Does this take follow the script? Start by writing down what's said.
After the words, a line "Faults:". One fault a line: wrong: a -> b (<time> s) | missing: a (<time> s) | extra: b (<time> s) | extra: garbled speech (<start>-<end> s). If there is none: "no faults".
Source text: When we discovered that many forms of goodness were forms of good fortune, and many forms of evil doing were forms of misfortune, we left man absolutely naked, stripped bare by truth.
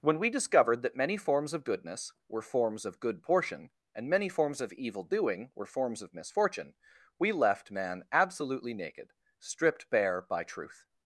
When we discovered that many forms of goodness were forms of good portion, and many forms of evil doing were forms of misfortune, we left man absolutely naked, stripped bare by truth.
Faults:
wrong: fortune -> portion (3.2 s)